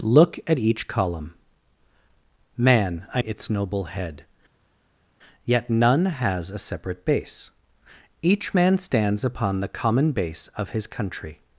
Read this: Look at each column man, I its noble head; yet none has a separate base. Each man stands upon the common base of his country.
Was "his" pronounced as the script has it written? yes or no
yes